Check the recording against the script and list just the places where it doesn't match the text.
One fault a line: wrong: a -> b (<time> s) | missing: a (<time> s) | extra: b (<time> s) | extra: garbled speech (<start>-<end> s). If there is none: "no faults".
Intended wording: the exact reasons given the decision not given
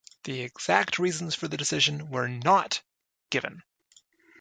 wrong: given -> for (1.4 s)
extra: were (2.1 s)